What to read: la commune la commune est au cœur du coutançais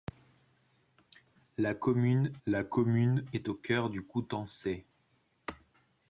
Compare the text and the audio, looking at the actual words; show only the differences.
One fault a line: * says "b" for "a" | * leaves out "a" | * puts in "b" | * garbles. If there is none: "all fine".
all fine